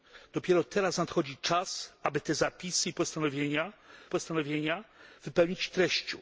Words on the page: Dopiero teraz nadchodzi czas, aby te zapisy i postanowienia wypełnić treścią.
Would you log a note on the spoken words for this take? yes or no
yes